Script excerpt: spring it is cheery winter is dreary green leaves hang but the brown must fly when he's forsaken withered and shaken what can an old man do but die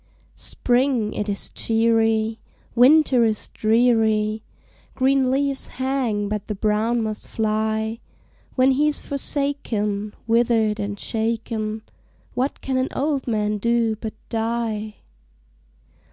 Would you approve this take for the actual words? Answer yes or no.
yes